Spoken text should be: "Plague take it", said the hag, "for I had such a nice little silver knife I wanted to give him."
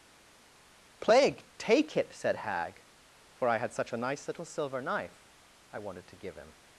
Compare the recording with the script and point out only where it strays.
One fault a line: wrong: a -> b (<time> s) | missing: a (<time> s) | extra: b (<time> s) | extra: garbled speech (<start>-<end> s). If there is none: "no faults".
missing: the (2.4 s)